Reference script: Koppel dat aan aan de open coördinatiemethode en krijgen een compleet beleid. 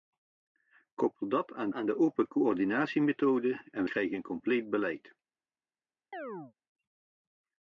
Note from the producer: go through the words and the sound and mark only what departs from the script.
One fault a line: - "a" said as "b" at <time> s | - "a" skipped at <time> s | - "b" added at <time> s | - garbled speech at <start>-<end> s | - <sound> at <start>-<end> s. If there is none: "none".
- chirp at 6.1-6.5 s